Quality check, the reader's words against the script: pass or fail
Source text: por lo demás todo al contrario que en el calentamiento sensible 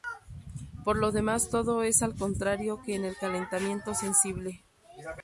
fail